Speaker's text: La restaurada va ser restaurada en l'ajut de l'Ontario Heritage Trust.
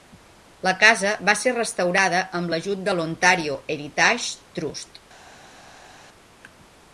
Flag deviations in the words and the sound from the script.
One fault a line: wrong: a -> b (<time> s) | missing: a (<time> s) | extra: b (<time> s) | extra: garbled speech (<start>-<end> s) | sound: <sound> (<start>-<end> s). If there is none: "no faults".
wrong: restaurada -> casa (0.8 s)
wrong: en -> amb (2.4 s)